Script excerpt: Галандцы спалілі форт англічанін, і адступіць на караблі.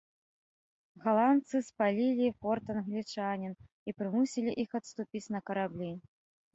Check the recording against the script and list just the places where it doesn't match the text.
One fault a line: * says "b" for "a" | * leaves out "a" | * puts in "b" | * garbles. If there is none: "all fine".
* puts in "прымусілі іх"